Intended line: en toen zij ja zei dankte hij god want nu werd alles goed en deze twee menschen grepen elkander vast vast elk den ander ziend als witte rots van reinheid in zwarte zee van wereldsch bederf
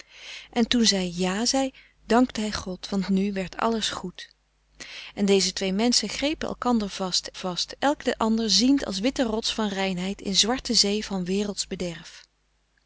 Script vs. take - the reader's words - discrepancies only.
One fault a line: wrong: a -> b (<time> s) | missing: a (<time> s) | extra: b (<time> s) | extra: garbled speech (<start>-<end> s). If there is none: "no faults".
no faults